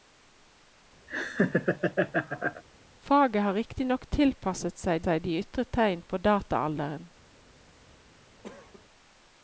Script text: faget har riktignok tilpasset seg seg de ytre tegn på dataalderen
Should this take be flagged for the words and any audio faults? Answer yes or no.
yes